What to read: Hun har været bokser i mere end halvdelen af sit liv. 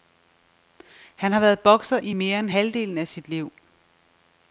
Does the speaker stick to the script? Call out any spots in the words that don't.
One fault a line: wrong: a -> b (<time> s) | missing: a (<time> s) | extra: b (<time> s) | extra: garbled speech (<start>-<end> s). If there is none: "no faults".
wrong: Hun -> Han (1.1 s)